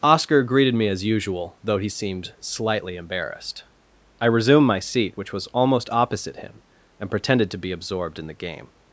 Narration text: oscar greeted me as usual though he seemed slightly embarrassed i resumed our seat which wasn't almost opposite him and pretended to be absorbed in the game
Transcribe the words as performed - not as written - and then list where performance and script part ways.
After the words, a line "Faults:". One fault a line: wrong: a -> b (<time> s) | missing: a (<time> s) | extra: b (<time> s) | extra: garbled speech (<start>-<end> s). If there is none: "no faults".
oscar greeted me as usual though he seemed slightly embarrassed i resumed my seat which was almost opposite him and pretended to be absorbed in the game
Faults:
wrong: our -> my (4.7 s)
wrong: wasn't -> was (5.3 s)